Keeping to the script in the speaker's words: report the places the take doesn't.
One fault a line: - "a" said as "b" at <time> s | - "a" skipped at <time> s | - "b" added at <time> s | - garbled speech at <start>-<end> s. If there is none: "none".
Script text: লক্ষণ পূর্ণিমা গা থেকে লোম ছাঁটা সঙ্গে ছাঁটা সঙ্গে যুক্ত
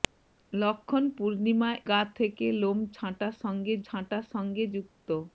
none